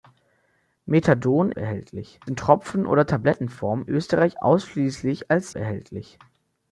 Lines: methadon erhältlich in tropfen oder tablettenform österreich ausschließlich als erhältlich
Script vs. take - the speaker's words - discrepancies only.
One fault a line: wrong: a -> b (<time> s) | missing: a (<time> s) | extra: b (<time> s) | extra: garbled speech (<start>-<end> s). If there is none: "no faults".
no faults